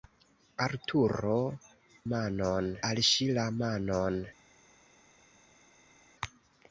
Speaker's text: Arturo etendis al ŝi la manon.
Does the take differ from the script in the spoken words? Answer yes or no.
yes